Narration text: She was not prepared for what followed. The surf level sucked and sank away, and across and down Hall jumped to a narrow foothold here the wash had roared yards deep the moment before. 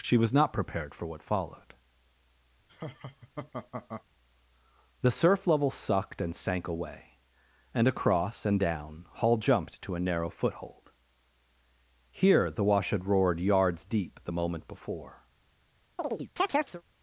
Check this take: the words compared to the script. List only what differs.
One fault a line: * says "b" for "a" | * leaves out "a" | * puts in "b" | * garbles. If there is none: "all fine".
all fine